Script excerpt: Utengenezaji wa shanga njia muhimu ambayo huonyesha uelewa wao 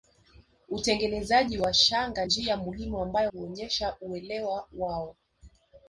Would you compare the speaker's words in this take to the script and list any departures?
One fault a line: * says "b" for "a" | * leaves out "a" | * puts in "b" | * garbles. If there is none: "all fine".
all fine